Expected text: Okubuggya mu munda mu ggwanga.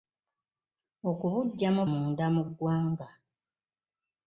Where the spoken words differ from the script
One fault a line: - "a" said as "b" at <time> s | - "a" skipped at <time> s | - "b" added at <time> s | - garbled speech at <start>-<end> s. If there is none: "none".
none